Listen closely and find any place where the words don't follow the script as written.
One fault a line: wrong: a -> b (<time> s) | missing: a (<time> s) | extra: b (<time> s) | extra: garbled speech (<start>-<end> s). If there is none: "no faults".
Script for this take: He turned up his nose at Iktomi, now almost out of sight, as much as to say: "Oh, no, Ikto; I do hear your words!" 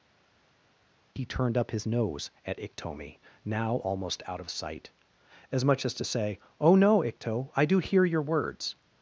no faults